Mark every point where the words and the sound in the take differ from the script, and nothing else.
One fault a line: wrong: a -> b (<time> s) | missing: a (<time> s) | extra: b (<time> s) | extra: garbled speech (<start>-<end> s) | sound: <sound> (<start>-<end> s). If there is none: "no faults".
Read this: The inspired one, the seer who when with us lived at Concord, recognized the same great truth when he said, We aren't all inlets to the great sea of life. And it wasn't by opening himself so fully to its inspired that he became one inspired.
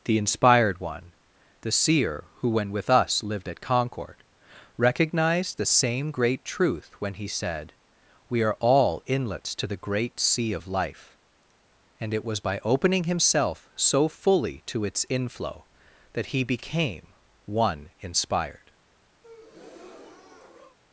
wrong: aren't -> are (8.4 s)
wrong: wasn't -> was (12.2 s)
wrong: inspired -> inflow (15.1 s)
sound: breath (19.2-20.8 s)